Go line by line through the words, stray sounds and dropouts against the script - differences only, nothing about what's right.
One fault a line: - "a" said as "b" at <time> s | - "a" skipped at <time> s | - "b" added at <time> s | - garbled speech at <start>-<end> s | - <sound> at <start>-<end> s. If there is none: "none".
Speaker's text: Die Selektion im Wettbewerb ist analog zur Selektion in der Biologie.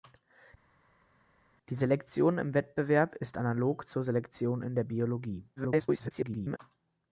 - garbled speech at 5.6-6.6 s